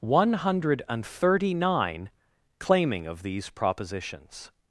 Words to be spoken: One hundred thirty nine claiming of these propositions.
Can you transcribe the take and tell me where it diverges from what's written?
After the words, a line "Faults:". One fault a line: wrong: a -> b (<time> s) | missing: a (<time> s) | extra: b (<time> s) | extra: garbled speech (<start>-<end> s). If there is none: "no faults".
One hundred thirty nine claiming of these propositions.
Faults:
no faults